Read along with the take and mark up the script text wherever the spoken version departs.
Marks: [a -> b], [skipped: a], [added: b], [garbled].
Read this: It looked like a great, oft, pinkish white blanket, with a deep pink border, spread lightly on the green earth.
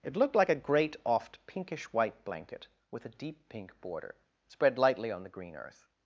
It looked like a great, oft, pinkish white blanket, with a deep pink border, spread lightly on the green earth.